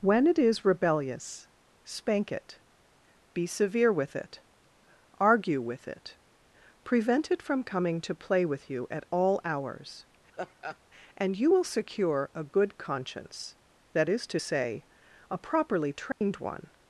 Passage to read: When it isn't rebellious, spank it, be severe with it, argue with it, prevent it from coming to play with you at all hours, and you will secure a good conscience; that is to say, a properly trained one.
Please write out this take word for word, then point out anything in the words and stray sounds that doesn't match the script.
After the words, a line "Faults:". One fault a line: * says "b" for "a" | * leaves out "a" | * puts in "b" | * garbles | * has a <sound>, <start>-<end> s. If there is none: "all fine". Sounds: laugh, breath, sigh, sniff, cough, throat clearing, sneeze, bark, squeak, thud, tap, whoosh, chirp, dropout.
When it is rebellious, spank it, be severe with it, argue with it, prevent it from coming to play with you at all hours, and you will secure a good conscience; that is to say, a properly trained one.
Faults:
* says "is" for "isn't"
* has a laugh, 10.3-10.8 s
* has a dropout, 16.1-16.2 s